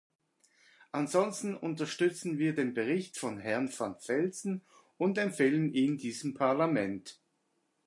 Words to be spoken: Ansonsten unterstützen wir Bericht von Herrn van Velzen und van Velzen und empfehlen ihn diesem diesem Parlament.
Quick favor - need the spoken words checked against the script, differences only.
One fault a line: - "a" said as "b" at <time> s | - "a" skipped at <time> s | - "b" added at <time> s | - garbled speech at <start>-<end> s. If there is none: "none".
- "den" added at 2.5 s
- "van Velzen und" skipped at 5.2 s
- "diesem" skipped at 6.3 s